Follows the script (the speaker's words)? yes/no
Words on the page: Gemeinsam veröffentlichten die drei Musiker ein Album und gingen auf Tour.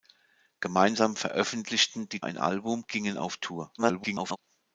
no